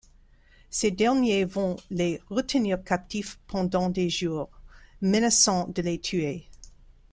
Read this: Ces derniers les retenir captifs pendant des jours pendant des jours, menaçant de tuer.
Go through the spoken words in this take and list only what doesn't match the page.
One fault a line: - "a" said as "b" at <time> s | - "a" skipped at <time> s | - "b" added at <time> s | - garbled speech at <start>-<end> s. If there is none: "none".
- "vont" added at 1.4 s
- "pendant des jours" skipped at 4.5 s
- "les" added at 5.8 s